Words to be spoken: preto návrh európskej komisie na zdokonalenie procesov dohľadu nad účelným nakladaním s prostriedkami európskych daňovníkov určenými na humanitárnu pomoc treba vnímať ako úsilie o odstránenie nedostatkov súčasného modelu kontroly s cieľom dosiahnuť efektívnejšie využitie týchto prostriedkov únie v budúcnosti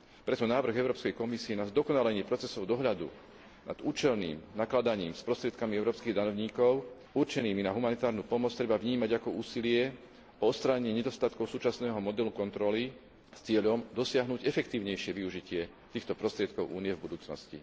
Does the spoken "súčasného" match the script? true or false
true